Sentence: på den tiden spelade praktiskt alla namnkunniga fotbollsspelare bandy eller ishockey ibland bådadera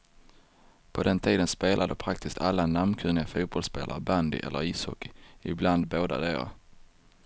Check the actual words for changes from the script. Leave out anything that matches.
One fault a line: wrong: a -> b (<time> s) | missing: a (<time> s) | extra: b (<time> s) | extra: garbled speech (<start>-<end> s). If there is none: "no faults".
no faults